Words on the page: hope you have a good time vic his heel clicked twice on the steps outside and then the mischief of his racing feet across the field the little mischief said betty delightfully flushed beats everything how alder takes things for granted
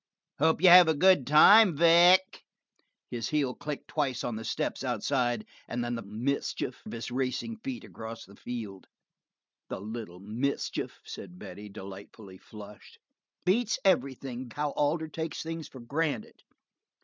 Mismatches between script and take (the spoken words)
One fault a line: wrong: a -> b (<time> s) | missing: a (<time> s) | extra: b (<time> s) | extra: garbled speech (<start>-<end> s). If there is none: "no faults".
no faults